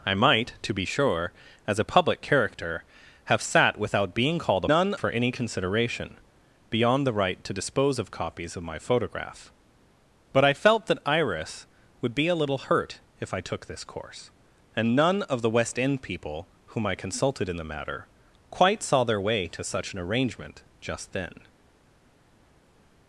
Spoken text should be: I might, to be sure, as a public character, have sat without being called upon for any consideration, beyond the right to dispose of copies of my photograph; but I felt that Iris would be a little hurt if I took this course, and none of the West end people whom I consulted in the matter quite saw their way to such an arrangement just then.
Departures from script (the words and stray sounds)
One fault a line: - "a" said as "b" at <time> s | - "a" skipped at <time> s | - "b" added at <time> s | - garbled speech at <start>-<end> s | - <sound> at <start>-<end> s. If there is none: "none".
- "upon" said as "none" at 4.7 s